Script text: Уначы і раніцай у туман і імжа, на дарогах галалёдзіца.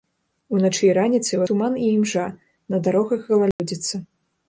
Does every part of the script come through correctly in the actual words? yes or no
yes